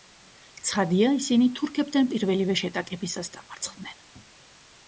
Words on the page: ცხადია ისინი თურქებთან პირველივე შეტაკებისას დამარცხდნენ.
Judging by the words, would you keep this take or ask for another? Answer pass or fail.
pass